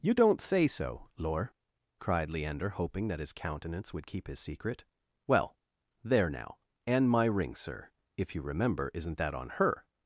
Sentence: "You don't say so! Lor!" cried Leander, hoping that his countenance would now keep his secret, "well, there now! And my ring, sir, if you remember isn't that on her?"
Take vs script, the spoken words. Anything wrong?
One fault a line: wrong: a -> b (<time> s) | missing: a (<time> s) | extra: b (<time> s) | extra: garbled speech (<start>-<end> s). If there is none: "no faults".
missing: now (4.1 s)